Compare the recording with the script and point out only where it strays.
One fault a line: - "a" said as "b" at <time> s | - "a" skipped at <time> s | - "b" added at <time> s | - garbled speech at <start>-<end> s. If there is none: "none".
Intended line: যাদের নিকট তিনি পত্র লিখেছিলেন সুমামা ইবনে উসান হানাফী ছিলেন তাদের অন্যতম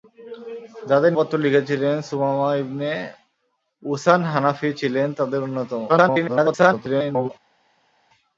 - "নিকট তিনি" skipped at 1.1 s
- garbled speech at 5.9-7.3 s